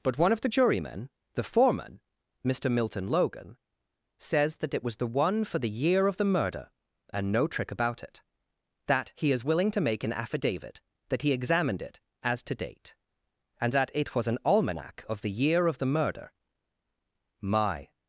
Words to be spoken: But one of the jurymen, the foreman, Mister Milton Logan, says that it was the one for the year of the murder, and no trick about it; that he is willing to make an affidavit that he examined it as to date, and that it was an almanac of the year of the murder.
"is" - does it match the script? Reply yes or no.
yes